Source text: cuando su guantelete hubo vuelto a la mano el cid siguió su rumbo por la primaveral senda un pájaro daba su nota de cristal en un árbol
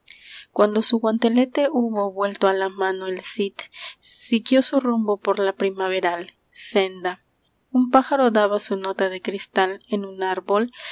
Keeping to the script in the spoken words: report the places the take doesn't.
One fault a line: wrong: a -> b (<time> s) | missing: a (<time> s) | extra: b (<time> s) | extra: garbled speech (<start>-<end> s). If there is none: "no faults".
no faults